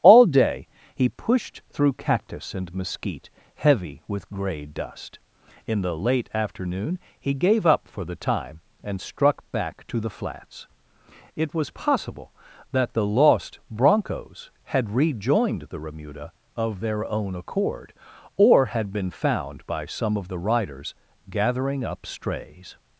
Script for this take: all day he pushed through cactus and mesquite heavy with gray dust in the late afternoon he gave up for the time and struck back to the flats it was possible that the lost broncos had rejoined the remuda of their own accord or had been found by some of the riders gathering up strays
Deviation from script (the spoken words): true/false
false